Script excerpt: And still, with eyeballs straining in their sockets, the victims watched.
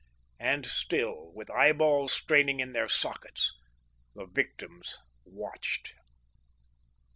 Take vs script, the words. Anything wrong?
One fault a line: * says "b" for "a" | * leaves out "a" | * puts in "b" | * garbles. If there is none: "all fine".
all fine